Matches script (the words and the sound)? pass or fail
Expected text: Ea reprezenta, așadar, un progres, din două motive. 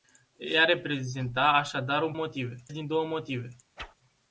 fail